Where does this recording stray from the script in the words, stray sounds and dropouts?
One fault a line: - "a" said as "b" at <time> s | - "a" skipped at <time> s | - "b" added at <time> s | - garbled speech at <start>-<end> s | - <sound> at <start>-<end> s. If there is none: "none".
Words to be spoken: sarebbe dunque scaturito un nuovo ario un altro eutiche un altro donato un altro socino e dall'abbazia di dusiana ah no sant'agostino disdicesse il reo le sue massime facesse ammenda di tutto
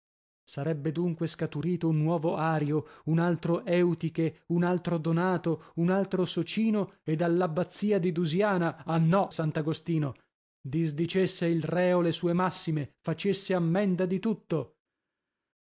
none